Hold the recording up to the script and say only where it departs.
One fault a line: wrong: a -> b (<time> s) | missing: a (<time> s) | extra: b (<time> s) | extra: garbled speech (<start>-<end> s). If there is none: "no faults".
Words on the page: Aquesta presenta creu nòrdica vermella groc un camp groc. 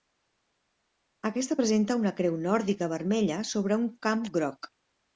extra: una (2.0 s)
wrong: groc -> sobre (3.5 s)